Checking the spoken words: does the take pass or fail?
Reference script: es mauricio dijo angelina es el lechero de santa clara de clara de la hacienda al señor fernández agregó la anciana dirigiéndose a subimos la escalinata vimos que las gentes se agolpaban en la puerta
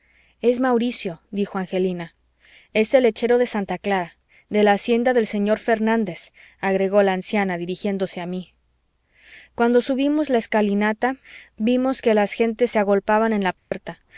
fail